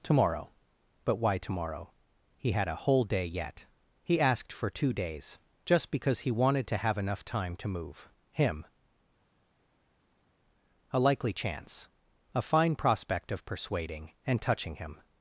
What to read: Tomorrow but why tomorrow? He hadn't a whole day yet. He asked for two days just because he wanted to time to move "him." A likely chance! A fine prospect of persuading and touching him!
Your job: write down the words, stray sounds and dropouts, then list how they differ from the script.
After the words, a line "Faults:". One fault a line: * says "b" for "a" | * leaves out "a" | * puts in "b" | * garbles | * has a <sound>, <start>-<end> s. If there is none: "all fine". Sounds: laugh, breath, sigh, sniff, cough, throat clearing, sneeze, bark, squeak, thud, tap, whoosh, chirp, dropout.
Tomorrow but why tomorrow? He had a whole day yet. He asked for two days just because he wanted to have enough time to move "him." A likely chance! A fine prospect of persuading and touching him!
Faults:
* says "had" for "hadn't"
* puts in "have enough"